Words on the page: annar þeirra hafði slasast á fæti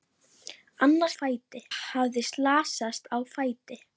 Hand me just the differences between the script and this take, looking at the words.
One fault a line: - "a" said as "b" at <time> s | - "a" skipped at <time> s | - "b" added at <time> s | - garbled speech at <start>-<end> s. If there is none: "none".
- "þeirra" said as "fæti" at 1.2 s